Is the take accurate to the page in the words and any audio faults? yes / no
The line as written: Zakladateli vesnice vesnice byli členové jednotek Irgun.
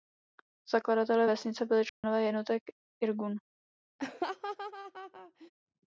no